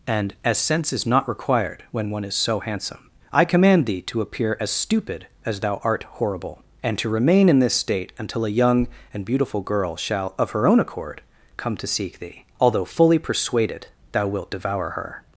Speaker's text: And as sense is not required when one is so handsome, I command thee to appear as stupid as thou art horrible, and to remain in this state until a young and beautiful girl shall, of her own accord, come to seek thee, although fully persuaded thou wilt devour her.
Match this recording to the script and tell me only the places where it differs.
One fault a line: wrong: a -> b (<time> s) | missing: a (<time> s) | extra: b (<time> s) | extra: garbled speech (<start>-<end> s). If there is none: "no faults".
no faults